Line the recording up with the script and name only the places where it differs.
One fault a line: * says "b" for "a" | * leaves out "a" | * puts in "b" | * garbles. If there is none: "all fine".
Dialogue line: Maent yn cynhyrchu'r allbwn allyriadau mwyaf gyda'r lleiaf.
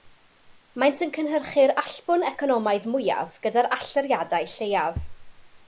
* says "economaidd" for "allyriadau"
* puts in "allyriadau"